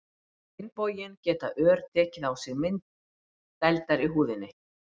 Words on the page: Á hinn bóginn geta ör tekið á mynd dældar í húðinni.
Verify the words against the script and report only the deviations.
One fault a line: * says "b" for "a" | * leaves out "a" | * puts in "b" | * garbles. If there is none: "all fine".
* puts in "sig"